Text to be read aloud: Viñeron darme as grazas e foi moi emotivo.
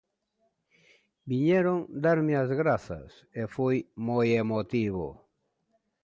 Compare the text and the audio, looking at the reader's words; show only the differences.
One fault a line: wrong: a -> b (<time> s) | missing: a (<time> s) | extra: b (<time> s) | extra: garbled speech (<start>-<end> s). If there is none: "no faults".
no faults